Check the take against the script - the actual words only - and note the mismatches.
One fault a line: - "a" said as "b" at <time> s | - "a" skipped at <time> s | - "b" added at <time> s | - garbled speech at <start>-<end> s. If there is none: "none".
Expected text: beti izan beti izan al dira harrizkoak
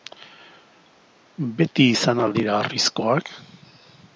- "beti izan" skipped at 2.2 s